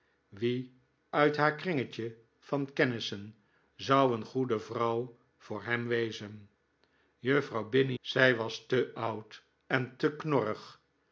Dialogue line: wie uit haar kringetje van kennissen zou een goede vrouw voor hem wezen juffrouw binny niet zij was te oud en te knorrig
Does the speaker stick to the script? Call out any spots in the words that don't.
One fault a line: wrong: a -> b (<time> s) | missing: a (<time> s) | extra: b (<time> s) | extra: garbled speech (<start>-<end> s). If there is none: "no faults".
missing: niet (8.0 s)